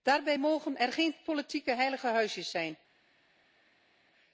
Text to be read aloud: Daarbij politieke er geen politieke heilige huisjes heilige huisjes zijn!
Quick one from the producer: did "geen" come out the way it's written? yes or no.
yes